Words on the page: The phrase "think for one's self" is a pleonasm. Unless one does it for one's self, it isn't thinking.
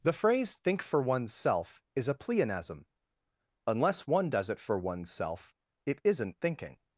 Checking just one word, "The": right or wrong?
right